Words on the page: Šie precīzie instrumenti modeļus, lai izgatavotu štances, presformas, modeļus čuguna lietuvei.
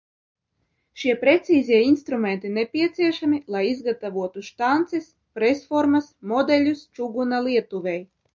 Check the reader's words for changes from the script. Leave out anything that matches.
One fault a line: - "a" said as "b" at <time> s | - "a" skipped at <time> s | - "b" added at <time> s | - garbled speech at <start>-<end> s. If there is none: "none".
- "modeļus" said as "nepieciešami" at 2.5 s